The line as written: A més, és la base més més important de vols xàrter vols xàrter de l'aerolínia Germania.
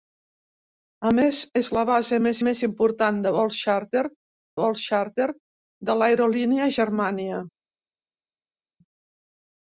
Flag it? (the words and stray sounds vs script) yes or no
no